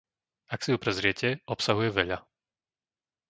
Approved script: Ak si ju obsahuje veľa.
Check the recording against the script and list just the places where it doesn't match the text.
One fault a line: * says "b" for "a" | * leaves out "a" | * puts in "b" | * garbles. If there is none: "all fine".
* puts in "prezriete"